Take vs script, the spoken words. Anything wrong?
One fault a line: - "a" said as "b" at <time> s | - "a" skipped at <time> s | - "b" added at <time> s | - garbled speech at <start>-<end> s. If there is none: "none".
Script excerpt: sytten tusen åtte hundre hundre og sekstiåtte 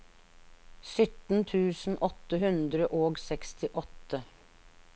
- "hundre" skipped at 2.9 s